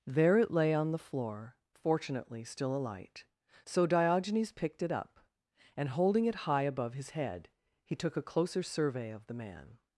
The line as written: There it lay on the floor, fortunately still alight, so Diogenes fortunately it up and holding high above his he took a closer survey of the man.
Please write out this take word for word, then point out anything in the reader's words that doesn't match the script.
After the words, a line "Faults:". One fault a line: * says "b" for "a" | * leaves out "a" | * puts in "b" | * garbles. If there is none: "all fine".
There it lay on the floor, fortunately still alight, so Diogenes picked it up and holding it high above his head he took a closer survey of the man.
Faults:
* says "picked" for "fortunately"
* puts in "it"
* puts in "head"